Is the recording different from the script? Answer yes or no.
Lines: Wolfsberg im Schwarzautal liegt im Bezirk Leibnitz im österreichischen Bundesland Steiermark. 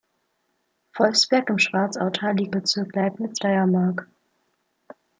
yes